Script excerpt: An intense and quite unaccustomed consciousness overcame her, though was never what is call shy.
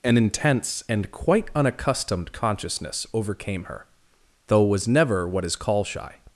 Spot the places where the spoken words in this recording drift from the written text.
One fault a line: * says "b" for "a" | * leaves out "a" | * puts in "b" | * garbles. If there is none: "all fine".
all fine